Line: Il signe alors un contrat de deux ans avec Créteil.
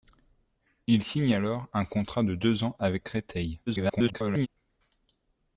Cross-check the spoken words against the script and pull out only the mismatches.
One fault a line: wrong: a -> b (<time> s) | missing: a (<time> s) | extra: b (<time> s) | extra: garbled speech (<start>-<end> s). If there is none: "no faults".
extra: garbled speech (3.7-4.5 s)